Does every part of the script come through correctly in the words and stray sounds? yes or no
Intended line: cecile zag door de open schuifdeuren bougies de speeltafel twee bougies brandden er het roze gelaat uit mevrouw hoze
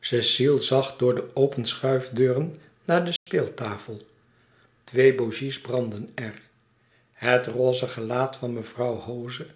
no